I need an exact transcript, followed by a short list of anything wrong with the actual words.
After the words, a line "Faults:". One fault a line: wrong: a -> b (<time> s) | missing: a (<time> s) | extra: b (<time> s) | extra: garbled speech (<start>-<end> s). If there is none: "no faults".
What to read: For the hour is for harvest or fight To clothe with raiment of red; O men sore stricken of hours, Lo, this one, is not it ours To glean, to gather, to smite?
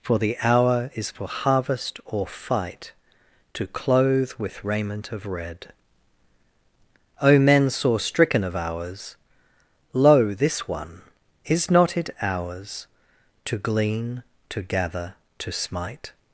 For the hour is for harvest or fight To clothe with raiment of red; O men sore stricken of hours, Lo, this one, is not it ours To glean, to gather, to smite?
Faults:
no faults